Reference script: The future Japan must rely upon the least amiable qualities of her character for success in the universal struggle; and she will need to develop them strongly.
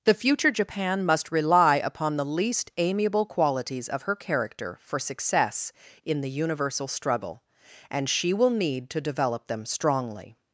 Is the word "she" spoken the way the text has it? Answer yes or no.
yes